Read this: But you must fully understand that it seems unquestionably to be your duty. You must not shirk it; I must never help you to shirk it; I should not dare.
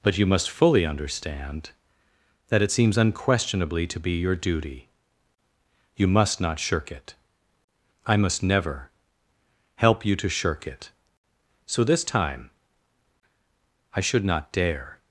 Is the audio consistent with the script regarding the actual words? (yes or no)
no